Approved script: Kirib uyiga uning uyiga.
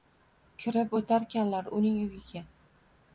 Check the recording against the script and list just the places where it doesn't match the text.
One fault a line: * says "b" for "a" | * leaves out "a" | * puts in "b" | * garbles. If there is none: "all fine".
* says "o'tarkanlar" for "uyiga"